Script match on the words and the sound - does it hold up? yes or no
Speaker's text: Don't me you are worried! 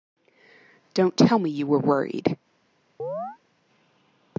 no